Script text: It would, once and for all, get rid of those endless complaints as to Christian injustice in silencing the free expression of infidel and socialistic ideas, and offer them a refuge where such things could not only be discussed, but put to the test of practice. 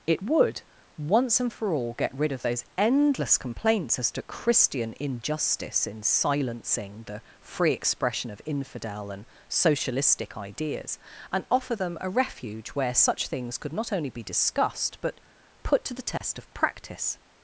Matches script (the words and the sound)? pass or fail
fail